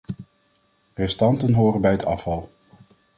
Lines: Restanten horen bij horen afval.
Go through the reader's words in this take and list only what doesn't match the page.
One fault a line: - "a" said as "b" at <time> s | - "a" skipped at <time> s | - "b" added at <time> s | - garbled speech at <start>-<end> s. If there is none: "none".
- "horen" said as "het" at 1.9 s